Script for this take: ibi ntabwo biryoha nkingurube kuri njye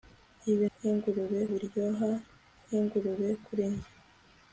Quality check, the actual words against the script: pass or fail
fail